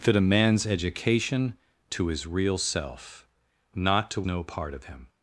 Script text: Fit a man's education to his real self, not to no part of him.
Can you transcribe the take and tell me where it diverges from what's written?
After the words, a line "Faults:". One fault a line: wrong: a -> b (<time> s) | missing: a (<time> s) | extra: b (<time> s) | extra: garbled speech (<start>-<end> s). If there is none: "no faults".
Fit a man's education to his real self, not to no part of him.
Faults:
no faults